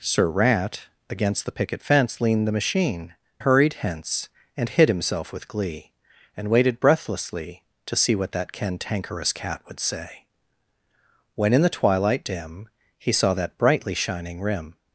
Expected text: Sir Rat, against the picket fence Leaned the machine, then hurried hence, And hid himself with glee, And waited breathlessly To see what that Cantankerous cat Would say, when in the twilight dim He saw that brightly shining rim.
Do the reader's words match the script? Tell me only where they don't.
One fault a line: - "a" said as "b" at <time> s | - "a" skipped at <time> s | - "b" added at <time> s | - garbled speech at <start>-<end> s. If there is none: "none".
- "then" skipped at 3.1 s